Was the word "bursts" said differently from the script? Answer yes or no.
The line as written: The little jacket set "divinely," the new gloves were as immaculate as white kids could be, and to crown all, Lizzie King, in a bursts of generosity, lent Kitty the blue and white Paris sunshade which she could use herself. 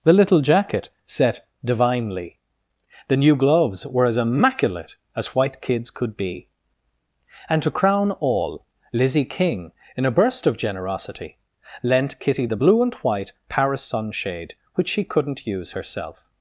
yes